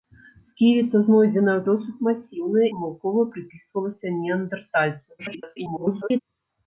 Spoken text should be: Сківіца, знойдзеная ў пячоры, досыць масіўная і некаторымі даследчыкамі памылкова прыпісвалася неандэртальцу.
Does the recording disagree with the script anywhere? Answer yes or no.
yes